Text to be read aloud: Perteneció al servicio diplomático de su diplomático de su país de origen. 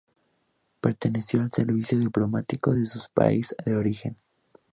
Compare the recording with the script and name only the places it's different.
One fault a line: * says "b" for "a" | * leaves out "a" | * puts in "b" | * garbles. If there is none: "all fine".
* leaves out "diplomático de su"